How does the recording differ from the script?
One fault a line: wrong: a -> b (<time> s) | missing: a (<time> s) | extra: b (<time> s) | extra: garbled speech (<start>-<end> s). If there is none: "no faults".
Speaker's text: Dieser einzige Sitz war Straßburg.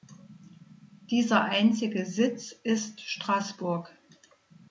wrong: war -> ist (2.5 s)